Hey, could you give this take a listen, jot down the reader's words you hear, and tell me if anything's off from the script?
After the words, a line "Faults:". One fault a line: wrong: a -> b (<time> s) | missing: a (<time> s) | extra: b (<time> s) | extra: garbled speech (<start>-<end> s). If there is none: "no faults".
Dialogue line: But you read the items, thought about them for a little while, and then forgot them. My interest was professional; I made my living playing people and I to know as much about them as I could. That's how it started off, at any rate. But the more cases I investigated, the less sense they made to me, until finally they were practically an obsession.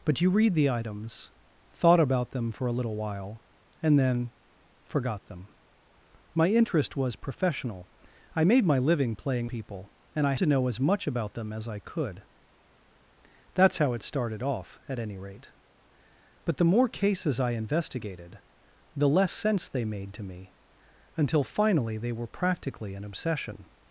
But you read the items, thought about them for a little while, and then forgot them. My interest was professional; I made my living playing people and I to know as much about them as I could. That's how it started off, at any rate. But the more cases I investigated, the less sense they made to me, until finally they were practically an obsession.
Faults:
no faults